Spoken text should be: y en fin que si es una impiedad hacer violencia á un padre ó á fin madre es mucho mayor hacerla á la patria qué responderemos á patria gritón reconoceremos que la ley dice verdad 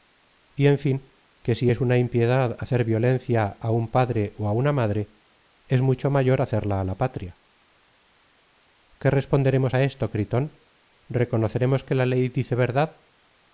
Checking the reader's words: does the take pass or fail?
fail